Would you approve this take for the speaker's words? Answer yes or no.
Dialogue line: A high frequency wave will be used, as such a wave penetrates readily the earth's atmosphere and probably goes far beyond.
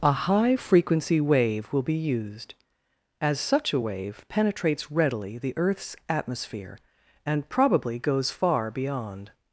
yes